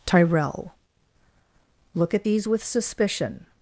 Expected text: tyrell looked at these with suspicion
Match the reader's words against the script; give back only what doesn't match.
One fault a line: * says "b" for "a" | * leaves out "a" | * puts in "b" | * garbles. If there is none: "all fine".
* says "look" for "looked"